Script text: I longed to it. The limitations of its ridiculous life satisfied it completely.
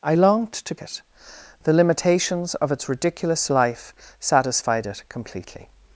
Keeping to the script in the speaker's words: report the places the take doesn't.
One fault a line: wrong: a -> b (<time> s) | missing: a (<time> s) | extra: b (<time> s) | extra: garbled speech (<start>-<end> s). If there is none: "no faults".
no faults